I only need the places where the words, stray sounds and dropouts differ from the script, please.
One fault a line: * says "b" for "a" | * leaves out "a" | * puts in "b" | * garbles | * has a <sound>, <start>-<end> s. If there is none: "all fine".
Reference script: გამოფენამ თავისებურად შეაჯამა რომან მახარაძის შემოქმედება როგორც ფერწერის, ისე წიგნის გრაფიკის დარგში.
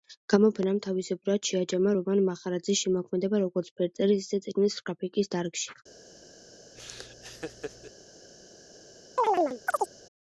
* has a laugh, 6.7-7.9 s
* has a chirp, 9.2-9.9 s